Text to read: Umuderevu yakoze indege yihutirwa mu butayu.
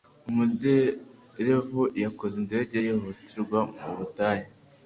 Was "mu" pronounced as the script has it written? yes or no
yes